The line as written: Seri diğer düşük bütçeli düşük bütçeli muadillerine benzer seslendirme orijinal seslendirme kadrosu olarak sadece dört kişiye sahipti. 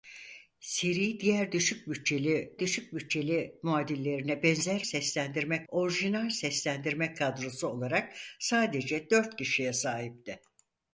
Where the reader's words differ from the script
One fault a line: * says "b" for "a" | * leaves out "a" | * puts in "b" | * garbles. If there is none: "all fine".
all fine